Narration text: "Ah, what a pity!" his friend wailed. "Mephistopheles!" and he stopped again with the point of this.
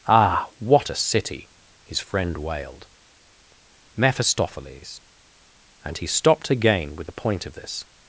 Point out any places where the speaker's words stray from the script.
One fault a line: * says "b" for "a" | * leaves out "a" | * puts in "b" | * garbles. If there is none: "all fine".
* says "city" for "pity"